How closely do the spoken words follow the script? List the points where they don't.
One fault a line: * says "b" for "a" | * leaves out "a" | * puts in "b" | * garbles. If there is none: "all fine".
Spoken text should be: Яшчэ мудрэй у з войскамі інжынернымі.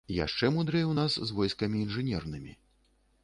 * puts in "нас"